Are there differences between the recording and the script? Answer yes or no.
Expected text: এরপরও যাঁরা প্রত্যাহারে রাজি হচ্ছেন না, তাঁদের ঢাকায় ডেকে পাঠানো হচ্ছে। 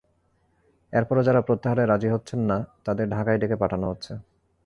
no